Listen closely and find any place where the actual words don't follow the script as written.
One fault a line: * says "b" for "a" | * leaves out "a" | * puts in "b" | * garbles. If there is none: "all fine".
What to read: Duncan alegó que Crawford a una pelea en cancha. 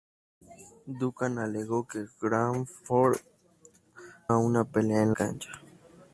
all fine